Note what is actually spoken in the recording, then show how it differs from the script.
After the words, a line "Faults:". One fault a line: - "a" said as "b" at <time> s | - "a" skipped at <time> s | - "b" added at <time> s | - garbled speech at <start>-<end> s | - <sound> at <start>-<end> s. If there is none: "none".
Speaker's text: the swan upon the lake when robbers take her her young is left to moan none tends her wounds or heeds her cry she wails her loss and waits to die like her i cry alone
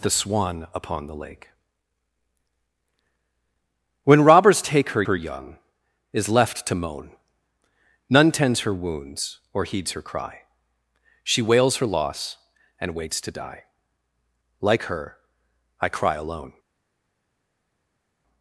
the swan upon the lake when robbers take her her young is left to moan none tends her wounds or heeds her cry she wails her loss and waits to die like her i cry alone
Faults:
none